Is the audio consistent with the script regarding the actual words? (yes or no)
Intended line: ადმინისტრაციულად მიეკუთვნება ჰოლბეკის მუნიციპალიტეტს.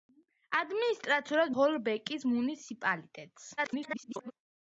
no